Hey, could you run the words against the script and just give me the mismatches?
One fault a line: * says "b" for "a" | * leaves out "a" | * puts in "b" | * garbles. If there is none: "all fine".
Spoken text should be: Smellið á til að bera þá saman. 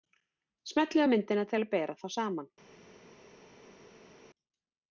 * puts in "myndina"